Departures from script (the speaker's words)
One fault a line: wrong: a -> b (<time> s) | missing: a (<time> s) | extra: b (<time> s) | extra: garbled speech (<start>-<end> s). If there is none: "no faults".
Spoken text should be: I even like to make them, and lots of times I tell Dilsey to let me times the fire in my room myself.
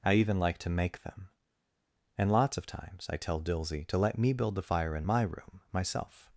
wrong: times -> build (4.3 s)